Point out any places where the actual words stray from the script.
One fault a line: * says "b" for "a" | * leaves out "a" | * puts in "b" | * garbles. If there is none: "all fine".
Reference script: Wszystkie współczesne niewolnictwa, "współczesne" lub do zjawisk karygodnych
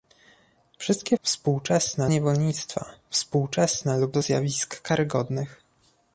all fine